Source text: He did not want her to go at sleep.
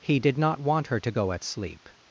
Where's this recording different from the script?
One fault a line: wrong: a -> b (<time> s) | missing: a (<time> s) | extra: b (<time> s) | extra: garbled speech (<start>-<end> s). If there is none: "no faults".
no faults